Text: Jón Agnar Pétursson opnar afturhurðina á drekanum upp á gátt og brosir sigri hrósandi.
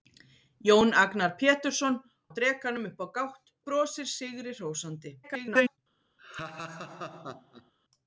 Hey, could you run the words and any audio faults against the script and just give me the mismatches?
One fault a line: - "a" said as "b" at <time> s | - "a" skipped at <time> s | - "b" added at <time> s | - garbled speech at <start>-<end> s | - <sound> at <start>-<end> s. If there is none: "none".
- "opnar afturhurðina" skipped at 2.0 s
- "og" skipped at 3.5 s
- garbled speech at 5.2-5.8 s
- laugh at 6.2-7.7 s